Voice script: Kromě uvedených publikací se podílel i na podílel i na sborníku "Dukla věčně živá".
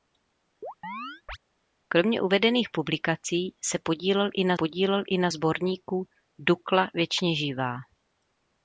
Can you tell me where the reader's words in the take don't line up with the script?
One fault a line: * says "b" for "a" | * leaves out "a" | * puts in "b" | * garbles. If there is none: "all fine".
all fine